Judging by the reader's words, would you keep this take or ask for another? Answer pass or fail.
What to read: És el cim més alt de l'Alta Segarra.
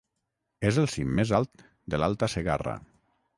pass